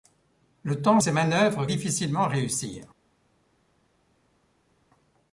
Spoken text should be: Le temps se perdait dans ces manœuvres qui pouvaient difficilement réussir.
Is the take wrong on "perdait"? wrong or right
wrong